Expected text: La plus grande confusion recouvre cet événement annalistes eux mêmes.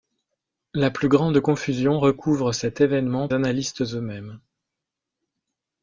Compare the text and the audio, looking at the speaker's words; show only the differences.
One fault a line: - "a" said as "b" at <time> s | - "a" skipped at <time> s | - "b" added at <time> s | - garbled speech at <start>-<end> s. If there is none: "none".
none